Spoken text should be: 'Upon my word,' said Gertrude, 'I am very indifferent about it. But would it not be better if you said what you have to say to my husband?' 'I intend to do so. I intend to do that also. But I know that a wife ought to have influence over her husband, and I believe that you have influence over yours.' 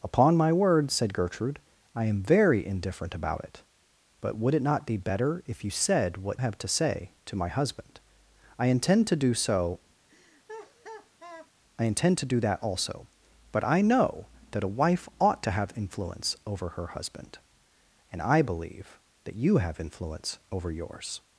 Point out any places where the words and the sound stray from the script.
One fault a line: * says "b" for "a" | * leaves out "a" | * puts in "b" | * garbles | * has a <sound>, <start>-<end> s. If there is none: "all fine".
* leaves out "you"
* has a laugh, 10.1-11.5 s